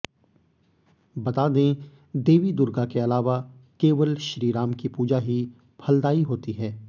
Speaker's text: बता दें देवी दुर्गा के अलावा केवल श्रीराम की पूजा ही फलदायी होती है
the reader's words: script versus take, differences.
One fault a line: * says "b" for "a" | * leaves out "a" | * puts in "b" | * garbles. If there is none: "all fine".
all fine